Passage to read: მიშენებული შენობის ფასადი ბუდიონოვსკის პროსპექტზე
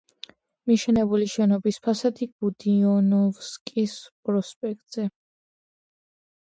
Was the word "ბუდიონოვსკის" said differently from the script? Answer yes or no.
no